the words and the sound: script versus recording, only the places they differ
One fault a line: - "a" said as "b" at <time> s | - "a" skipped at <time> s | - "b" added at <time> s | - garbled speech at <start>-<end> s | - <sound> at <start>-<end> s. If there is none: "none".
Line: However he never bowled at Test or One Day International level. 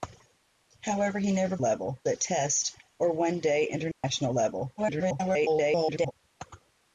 - "bowled" said as "level" at 1.6 s
- dropout at 3.9-4.0 s
- garbled speech at 4.8-6.1 s